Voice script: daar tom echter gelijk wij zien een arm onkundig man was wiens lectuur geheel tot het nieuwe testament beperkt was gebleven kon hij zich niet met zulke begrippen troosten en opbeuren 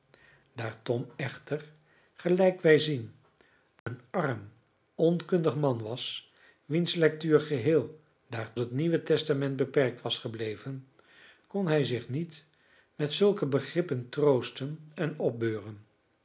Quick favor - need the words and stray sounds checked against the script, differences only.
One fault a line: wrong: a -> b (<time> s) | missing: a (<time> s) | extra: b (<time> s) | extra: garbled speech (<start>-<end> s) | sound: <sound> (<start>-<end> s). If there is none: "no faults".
sound: dropout (3.8-3.9 s)
wrong: tot -> daar (8.3 s)